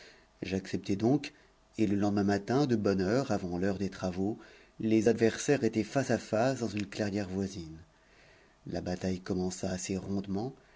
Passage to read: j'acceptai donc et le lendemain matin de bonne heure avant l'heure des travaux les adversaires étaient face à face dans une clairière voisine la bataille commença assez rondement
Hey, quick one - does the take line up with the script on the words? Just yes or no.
yes